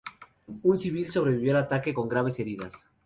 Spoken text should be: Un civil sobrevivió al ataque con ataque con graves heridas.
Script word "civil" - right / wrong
right